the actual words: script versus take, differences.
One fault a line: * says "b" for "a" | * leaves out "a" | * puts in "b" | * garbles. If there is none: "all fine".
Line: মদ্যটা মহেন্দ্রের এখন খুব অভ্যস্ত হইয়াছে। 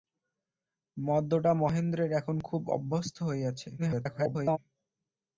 * garbles